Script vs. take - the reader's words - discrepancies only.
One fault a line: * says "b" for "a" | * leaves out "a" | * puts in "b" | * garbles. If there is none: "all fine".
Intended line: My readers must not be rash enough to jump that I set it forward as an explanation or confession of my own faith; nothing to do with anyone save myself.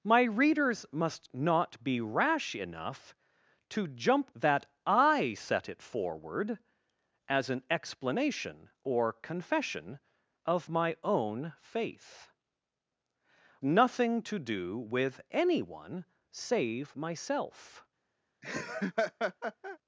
all fine